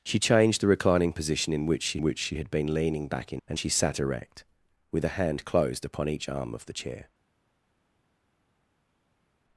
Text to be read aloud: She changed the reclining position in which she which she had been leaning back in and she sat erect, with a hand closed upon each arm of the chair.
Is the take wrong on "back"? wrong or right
right